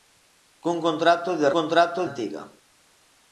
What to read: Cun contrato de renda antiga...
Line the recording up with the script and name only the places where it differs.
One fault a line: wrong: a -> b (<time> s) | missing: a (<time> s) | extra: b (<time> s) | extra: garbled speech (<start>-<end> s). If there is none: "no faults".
wrong: renda -> contrato (1.6 s)